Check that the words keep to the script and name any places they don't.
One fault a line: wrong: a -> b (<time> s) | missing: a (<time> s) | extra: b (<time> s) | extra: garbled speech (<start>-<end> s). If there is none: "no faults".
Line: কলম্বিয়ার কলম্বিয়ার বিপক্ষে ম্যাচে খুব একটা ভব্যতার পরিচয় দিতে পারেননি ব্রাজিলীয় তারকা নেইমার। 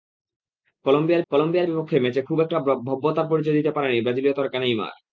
no faults